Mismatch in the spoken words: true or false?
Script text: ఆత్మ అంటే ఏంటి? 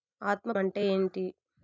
false